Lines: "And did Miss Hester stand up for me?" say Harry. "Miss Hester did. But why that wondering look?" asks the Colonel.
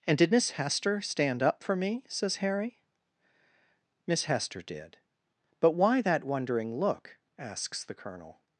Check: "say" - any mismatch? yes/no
yes